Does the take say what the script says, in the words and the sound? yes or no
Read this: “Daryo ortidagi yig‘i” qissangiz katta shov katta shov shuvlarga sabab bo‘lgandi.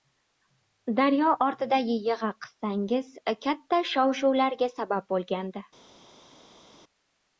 no